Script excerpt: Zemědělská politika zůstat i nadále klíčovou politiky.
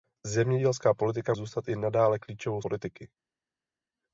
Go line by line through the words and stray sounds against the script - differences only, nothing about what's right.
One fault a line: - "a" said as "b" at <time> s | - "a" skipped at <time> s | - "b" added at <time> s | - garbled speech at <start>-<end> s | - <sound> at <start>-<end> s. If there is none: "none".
none